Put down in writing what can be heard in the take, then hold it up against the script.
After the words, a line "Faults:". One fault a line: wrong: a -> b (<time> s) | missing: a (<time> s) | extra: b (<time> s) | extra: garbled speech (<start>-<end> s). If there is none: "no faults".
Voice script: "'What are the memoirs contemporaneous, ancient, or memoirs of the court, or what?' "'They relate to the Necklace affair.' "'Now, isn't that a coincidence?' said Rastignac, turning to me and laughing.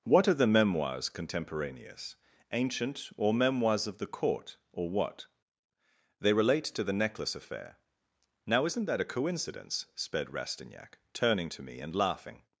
"'What are the memoirs contemporaneous, ancient, or memoirs of the court, or what?' "'They relate to the Necklace affair.' "'Now, isn't that a coincidence?' sped Rastignac, turning to me and laughing.
Faults:
wrong: said -> sped (9.9 s)